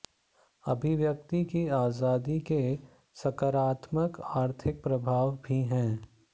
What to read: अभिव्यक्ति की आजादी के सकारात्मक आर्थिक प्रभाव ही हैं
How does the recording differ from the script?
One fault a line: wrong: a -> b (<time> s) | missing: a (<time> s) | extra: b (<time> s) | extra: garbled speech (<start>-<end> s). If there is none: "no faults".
wrong: ही -> भी (5.4 s)